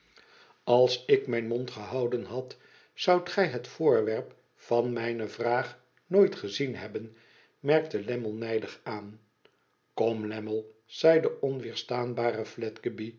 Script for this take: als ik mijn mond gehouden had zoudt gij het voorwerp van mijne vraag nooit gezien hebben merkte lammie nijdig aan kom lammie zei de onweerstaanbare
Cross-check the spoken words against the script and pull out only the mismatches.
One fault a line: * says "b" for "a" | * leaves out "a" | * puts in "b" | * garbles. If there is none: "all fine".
all fine